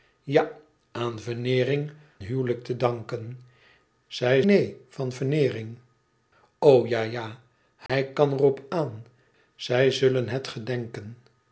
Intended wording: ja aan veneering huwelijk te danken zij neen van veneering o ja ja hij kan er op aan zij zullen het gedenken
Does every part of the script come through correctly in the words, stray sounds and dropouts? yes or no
no